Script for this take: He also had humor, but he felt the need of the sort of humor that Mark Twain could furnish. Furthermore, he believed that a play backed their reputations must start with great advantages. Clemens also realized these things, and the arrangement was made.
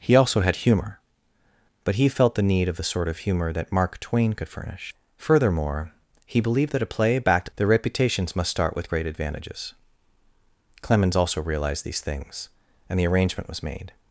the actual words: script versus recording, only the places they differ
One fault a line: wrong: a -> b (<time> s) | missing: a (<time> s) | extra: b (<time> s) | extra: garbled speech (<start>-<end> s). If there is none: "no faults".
no faults